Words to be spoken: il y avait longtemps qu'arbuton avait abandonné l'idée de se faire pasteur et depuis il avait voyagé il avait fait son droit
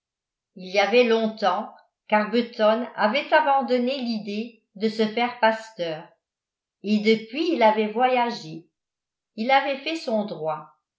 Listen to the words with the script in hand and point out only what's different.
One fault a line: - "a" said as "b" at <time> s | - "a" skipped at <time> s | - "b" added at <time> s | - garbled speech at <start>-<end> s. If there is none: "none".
none